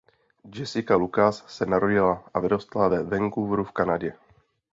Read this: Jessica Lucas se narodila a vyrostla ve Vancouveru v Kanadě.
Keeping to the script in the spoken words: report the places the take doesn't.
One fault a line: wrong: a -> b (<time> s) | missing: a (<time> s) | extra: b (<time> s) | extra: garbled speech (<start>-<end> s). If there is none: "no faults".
no faults